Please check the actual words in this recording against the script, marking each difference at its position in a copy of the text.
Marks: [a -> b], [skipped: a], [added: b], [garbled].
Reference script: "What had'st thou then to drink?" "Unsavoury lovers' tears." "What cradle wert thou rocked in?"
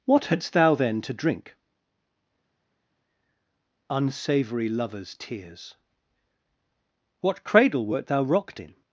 "What had'st thou then to drink?" "Unsavoury lovers' tears." "What cradle wert thou rocked in?"